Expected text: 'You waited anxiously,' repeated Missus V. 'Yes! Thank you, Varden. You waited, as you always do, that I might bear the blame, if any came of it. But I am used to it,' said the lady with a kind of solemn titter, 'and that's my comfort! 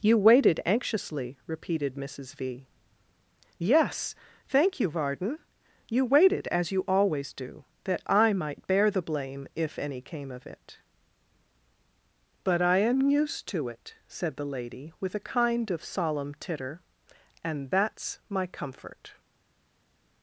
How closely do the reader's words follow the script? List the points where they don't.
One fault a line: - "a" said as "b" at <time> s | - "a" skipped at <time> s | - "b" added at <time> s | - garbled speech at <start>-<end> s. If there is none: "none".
none